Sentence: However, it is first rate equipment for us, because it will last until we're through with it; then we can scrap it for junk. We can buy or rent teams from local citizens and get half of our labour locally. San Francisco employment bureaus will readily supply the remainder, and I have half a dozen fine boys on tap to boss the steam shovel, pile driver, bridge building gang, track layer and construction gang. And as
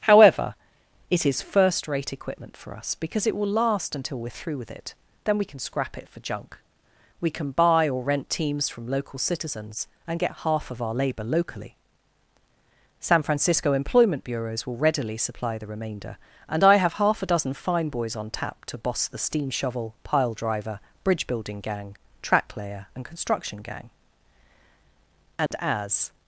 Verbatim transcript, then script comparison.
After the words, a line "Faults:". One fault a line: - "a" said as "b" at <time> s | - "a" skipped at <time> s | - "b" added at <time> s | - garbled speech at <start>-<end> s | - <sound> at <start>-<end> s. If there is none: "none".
However, it is first rate equipment for us, because it will last until we're through with it; then we can scrap it for junk. We can buy or rent teams from local citizens and get half of our labour locally. San Francisco employment bureaus will readily supply the remainder, and I have half a dozen fine boys on tap to boss the steam shovel, pile driver, bridge building gang, track layer and construction gang. And as
Faults:
- dropout at 25.5-25.5 s